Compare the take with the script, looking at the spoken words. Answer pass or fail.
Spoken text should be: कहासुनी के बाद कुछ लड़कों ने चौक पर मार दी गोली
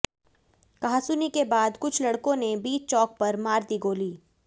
fail